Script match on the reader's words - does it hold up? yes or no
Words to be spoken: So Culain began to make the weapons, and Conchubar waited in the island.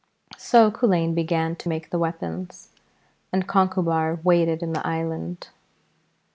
yes